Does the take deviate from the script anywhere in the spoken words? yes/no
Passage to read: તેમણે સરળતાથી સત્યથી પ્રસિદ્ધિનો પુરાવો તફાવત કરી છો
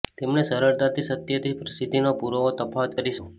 no